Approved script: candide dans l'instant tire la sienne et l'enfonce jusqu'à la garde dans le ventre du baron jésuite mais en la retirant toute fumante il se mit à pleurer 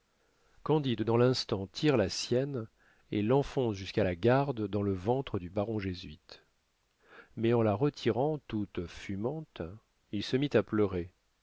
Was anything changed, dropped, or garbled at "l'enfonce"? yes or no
no